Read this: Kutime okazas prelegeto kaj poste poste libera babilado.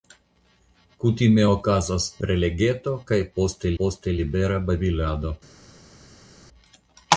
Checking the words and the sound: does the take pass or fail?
pass